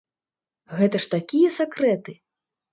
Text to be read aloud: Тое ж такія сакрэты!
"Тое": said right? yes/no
no